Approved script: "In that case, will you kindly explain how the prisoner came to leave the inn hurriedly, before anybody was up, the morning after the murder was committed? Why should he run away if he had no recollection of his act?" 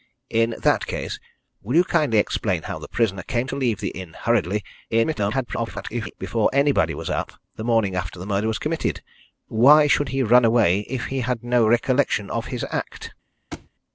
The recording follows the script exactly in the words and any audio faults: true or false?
false